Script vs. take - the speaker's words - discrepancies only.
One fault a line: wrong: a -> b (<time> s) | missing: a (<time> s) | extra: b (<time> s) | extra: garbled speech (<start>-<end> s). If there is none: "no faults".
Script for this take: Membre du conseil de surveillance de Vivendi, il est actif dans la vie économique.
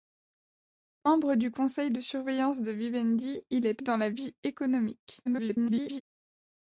missing: actif (3.8 s)
extra: garbled speech (5.3-6.0 s)